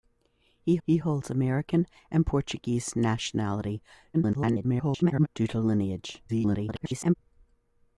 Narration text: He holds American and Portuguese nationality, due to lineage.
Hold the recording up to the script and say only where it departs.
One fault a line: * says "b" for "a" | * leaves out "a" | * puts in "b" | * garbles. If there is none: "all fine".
* puts in "he"
* garbles
* garbles